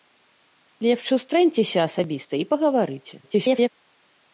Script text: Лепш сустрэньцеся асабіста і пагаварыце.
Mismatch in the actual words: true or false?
true